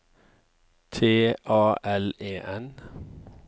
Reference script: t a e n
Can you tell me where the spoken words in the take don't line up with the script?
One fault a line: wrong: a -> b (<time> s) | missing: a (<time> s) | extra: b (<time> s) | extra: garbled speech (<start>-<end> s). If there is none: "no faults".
extra: l (1.8 s)